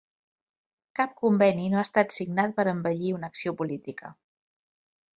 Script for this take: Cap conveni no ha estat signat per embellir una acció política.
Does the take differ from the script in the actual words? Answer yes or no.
no